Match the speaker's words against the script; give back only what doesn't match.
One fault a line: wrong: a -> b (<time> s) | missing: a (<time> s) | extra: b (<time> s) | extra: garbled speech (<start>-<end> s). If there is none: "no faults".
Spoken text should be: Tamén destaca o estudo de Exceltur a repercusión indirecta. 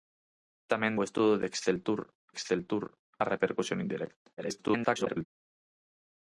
missing: destaca (1.0 s)
extra: Exceltur (2.3 s)
extra: garbled speech (4.4-5.3 s)